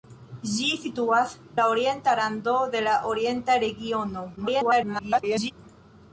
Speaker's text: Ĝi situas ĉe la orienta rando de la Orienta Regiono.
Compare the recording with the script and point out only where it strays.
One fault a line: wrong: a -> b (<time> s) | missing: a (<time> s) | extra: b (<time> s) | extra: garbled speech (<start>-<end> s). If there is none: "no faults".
missing: ĉe (1.4 s)
extra: garbled speech (4.4-5.5 s)